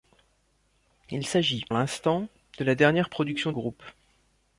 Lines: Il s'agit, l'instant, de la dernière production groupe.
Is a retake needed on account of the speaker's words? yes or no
no